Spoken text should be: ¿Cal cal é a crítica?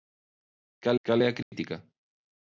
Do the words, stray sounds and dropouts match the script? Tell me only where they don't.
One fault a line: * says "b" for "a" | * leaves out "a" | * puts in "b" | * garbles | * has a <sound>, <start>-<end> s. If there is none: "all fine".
* has a dropout, 1.4-1.5 s